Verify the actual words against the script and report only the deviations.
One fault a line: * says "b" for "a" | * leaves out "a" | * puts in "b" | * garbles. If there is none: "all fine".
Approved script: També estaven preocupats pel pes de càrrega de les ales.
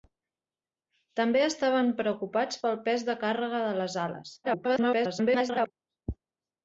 * garbles